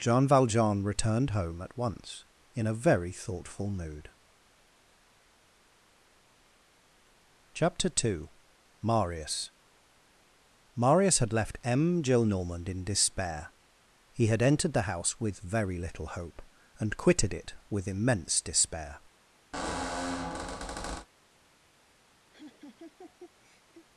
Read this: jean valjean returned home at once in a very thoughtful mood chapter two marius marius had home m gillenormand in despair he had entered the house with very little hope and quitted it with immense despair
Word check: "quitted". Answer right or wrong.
right